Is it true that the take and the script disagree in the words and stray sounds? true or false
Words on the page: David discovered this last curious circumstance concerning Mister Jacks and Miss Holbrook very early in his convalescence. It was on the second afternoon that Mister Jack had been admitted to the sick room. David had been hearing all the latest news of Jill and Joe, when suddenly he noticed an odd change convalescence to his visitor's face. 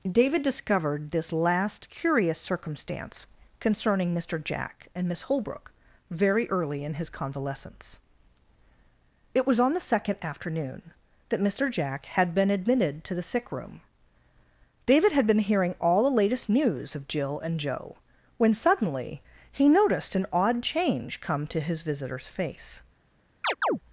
true